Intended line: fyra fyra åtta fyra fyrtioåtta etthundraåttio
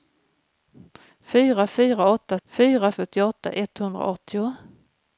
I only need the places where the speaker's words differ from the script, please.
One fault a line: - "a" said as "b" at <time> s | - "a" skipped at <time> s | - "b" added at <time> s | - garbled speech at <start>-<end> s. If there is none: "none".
none